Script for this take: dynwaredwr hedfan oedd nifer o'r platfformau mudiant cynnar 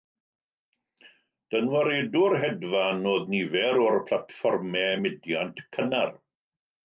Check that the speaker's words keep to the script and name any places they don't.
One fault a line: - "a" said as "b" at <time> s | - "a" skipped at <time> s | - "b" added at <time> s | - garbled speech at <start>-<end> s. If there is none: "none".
none